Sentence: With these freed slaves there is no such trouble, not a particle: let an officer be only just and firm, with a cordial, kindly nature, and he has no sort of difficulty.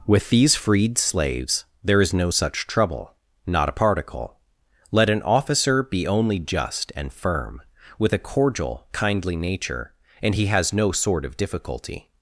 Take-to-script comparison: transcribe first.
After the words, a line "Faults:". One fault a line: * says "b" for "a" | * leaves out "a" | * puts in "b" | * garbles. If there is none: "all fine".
With these freed slaves there is no such trouble, not a particle: let an officer be only just and firm, with a cordial, kindly nature, and he has no sort of difficulty.
Faults:
all fine